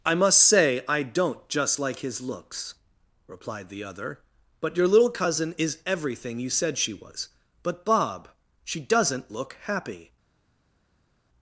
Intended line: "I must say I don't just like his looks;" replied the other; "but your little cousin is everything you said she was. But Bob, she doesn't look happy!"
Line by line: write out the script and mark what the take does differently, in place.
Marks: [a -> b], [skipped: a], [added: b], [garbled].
"I must say I don't just like his looks;" replied the other; "but your little cousin is everything you said she was. But Bob, she doesn't look happy!"